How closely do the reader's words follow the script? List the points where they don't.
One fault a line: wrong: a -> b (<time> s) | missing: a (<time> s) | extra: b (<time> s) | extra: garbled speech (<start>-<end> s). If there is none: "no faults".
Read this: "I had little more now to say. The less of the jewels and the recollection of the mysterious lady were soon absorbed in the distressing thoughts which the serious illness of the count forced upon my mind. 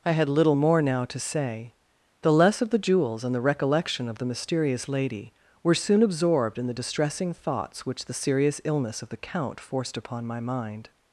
no faults